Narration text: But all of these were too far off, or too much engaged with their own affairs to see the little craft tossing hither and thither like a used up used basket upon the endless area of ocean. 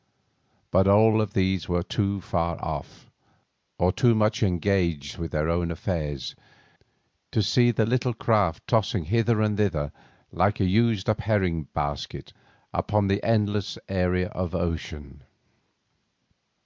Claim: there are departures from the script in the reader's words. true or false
true